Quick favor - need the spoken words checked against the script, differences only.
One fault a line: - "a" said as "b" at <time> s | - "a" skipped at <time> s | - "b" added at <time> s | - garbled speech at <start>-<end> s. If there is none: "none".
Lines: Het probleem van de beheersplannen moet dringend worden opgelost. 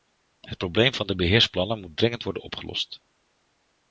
none